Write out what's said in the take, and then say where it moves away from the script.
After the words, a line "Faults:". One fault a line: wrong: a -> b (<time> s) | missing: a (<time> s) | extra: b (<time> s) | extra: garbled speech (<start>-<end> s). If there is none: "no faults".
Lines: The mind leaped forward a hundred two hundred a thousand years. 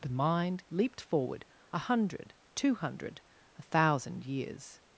The mind leaped forward a hundred two hundred a thousand years.
Faults:
no faults